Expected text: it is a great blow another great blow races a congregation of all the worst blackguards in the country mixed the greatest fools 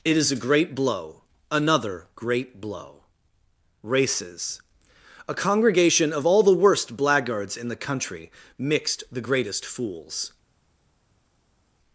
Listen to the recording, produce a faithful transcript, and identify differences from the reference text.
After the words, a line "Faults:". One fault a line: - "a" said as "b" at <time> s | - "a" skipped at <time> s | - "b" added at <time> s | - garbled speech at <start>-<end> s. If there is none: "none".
it is a great blow another great blow races a congregation of all the worst blackguards in the country mixed the greatest fools
Faults:
none